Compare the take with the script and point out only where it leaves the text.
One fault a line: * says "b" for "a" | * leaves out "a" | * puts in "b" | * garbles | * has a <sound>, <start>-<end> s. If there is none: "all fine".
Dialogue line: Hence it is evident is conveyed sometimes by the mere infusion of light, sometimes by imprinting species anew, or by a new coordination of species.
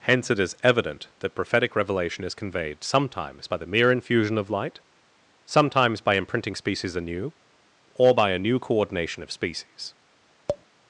* puts in "that prophetic revelation"
* has a tap, 10.5-10.6 s